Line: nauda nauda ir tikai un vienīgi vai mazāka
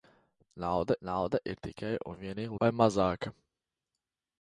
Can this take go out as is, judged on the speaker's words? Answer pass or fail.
pass